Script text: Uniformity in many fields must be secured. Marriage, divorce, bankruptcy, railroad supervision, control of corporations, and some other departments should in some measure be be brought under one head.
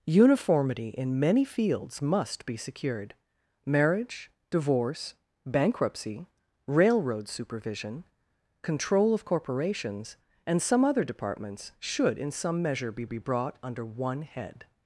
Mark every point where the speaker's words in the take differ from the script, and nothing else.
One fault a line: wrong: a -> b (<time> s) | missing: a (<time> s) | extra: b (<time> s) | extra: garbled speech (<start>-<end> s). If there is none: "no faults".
no faults